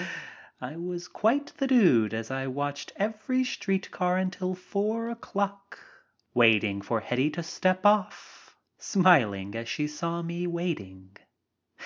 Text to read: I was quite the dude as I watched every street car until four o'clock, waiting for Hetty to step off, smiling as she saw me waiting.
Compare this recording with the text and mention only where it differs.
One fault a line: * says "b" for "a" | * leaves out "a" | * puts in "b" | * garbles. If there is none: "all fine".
all fine